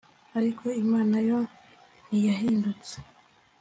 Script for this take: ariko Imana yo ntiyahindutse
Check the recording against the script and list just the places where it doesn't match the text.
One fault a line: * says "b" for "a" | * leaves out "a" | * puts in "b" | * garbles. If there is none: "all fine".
all fine